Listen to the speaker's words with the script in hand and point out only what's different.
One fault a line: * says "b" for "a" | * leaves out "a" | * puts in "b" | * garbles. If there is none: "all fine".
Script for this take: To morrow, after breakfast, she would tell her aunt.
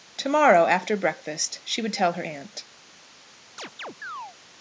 all fine